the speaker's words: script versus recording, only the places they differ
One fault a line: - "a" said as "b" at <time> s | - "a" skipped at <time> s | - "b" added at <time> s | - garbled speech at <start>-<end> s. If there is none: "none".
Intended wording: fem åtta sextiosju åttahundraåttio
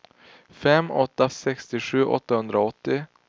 none